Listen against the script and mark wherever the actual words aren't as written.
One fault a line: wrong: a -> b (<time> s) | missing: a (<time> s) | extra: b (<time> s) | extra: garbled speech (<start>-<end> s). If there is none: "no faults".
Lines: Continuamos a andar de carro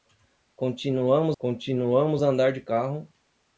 extra: continuamos (1.4 s)